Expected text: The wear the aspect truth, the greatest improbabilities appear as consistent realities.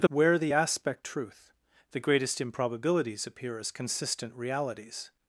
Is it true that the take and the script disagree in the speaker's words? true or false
false